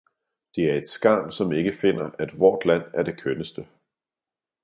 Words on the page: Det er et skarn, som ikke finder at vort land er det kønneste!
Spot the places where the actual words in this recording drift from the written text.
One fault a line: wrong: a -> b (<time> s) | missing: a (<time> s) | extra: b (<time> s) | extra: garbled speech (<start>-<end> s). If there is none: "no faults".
no faults